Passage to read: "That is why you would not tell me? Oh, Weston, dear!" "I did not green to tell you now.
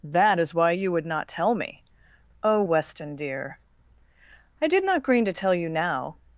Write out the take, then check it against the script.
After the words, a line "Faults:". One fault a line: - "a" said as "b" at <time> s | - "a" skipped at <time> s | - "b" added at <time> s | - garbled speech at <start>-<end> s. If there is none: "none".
"That is why you would not tell me? Oh, Weston, dear!" "I did not green to tell you now.
Faults:
none